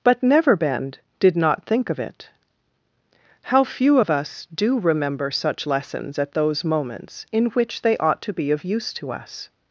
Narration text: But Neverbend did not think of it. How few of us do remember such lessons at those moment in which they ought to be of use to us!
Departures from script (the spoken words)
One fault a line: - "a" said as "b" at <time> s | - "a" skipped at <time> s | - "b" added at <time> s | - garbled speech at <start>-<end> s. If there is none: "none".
- "moment" said as "moments" at 6.6 s